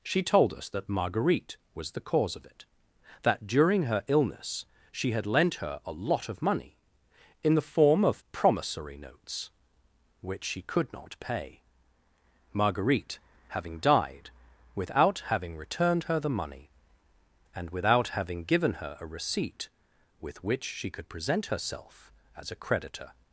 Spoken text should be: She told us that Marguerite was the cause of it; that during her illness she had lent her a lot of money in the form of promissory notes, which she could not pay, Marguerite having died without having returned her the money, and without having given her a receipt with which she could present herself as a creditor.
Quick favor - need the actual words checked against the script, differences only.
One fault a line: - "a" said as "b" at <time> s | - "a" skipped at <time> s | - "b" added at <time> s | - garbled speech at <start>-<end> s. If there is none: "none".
none